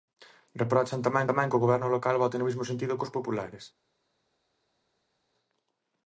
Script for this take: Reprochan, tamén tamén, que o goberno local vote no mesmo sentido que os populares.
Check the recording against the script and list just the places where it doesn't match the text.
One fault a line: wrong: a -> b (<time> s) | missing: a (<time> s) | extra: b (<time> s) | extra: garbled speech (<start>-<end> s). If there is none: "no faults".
no faults